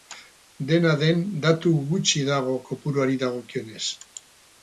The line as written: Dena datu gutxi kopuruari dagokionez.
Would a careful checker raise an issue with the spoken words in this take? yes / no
yes